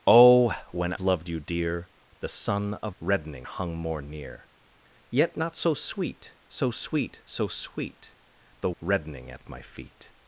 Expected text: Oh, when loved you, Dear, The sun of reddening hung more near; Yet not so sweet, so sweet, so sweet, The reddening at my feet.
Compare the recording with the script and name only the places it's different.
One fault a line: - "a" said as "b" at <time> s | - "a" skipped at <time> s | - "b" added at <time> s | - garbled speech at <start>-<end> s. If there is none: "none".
none